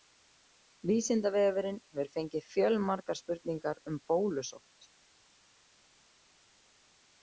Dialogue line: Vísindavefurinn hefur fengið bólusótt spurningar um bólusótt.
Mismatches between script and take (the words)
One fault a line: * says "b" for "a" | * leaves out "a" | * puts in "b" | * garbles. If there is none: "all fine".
* says "fjölmargar" for "bólusótt"